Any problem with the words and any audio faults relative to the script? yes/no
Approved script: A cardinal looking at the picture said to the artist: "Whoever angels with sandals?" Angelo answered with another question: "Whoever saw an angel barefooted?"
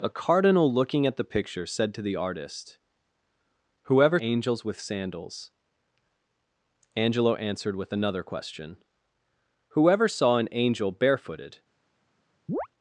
yes